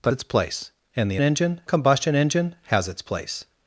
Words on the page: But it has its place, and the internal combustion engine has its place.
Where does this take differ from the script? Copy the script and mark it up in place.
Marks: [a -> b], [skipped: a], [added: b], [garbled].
But [skipped: it has] its place, and the [internal -> engine] combustion engine has its place.